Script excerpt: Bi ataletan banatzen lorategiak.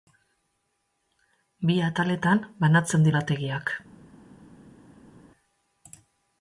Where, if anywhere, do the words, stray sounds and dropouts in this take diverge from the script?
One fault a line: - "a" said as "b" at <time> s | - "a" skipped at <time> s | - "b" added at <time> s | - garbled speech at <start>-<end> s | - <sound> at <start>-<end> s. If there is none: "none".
none